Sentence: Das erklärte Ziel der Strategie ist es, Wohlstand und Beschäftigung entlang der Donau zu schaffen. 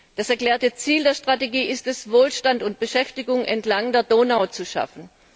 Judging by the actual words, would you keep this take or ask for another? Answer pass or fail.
pass